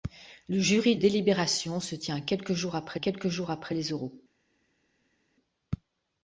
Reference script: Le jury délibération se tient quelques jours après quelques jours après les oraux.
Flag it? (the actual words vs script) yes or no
no